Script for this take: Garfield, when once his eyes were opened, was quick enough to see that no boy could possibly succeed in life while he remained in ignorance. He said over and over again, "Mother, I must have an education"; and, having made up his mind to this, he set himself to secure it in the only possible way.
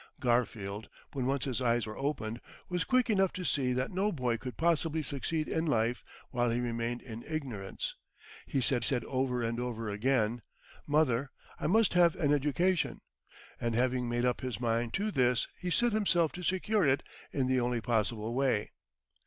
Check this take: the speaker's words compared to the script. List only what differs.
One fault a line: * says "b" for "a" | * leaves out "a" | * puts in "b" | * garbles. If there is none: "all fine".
* puts in "said"